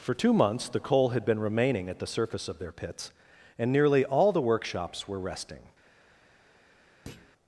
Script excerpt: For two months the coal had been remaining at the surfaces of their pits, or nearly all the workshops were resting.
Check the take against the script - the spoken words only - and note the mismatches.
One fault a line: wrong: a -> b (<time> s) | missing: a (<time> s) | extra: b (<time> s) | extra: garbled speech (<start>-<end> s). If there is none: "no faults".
wrong: surfaces -> surface (2.1 s)
wrong: or -> and (3.6 s)